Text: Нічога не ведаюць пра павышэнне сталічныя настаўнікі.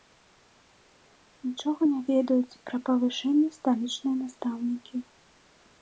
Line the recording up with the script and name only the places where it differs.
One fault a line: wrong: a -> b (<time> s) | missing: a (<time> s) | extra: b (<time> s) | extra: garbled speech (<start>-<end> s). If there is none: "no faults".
no faults